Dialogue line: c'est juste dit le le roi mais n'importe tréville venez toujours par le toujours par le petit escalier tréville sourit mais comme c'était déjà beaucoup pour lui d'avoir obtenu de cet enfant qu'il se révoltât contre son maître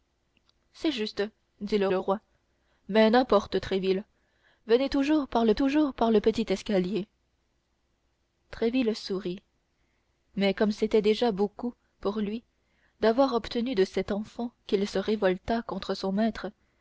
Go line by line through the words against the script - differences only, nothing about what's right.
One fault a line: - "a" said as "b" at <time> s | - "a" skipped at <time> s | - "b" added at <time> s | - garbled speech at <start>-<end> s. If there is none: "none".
none